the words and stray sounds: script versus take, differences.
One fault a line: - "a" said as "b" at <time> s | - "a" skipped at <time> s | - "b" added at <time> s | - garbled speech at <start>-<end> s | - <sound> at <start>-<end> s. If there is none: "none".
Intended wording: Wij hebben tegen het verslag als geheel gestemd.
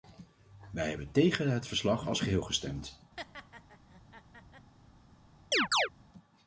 - laugh at 3.2-4.7 s
- chirp at 5.5-5.9 s